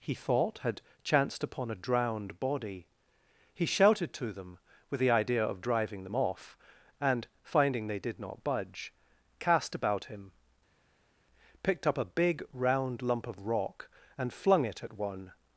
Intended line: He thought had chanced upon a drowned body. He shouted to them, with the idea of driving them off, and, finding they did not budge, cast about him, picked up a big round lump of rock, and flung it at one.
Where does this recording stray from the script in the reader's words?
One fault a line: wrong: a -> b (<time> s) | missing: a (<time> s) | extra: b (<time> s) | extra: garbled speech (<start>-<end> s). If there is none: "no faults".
no faults